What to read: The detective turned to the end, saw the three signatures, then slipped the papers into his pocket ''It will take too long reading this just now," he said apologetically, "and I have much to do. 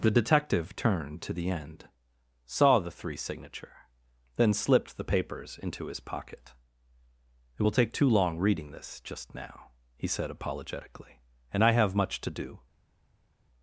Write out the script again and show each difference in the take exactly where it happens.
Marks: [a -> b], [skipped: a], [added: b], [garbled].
The detective turned to the end, saw the three [signatures, -> signature] then slipped the papers into his pocket ''It will take too long reading this just now," he said apologetically, "and I have much to do.